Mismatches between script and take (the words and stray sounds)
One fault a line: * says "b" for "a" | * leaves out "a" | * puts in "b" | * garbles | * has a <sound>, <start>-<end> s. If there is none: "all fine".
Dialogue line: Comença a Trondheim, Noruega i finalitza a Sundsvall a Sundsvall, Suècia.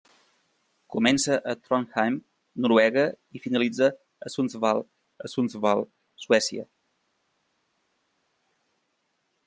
all fine